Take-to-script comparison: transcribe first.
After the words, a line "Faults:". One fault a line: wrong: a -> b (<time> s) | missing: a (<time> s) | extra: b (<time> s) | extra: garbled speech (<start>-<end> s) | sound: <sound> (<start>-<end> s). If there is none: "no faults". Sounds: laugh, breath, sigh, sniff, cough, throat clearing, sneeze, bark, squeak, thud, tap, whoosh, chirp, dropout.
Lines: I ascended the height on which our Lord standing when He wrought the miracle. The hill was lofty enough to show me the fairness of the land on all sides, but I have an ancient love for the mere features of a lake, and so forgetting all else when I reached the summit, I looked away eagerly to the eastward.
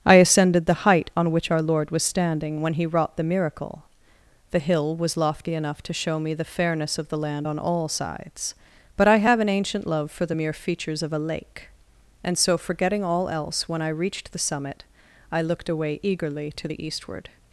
I ascended the height on which our Lord was standing when He wrought the miracle. The hill was lofty enough to show me the fairness of the land on all sides, but I have an ancient love for the mere features of a lake, and so forgetting all else when I reached the summit, I looked away eagerly to the eastward.
Faults:
extra: was (1.9 s)